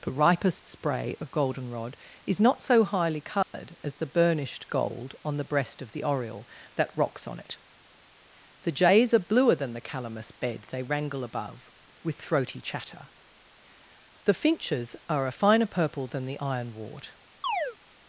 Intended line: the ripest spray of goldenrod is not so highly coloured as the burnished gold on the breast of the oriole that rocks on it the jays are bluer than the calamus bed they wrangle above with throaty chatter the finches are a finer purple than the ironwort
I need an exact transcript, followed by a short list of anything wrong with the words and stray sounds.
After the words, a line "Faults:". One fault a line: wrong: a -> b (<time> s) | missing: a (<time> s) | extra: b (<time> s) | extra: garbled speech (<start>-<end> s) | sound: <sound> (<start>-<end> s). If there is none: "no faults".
the ripest spray of goldenrod is not so highly coloured as the burnished gold on the breast of the oriole that rocks on it the jays are bluer than the calamus bed they wrangle above with throaty chatter the finches are a finer purple than the ironwort
Faults:
sound: dropout (3.4-3.5 s)
sound: chirp (17.4-17.8 s)